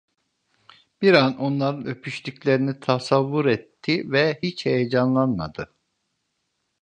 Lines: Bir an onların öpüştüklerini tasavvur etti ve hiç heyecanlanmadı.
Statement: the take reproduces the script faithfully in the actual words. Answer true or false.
true